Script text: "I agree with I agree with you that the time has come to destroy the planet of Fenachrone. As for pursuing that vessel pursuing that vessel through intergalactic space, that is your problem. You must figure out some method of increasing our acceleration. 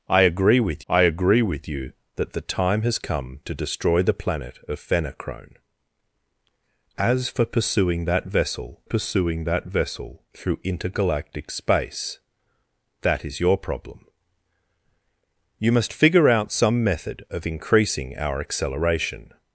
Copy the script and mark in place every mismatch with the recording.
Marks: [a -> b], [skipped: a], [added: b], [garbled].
"I agree with I agree with you that the time has come to destroy the planet of Fenachrone. As for pursuing that vessel pursuing that vessel through intergalactic space, that is your problem. You must figure out some method of increasing our acceleration.